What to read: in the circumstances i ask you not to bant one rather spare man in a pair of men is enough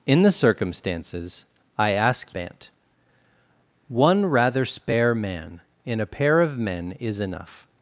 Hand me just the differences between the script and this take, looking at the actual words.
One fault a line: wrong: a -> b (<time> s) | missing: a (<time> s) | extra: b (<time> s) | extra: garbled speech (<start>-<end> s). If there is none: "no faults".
missing: you not to (2.3 s)